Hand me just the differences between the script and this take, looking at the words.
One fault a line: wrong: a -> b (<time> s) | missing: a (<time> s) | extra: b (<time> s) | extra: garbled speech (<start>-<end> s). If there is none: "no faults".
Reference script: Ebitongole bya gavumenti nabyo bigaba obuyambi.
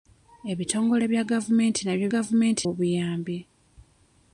wrong: bigaba -> gavumenti (2.1 s)